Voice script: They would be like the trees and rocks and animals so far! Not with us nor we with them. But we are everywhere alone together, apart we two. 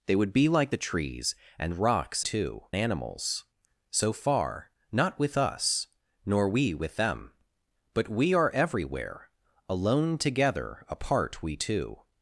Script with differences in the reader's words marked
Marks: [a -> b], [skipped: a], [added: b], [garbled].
They would be like the trees and rocks [and -> two] animals so far! Not with us nor we with them. But we are everywhere alone together, apart we two.